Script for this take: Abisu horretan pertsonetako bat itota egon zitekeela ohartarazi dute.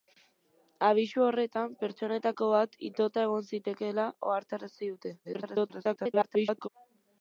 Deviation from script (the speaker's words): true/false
true